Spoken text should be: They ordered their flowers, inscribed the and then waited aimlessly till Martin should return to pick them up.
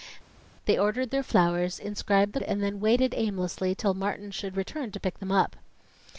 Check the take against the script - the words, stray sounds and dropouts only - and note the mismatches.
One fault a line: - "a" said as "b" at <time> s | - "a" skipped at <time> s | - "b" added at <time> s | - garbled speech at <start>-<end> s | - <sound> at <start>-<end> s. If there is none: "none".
none